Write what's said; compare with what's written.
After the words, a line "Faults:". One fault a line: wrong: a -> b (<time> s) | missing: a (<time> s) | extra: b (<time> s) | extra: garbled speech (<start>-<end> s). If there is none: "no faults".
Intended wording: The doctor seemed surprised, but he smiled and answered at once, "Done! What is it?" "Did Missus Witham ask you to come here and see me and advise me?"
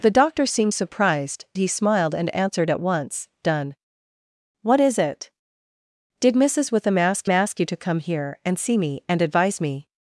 The doctor seemed surprised, he smiled and answered at once, "Done! What is it?" "Did Missus Witham ask ask you to come here and see me and advise me?"
Faults:
missing: but (1.4 s)
extra: ask (7.3 s)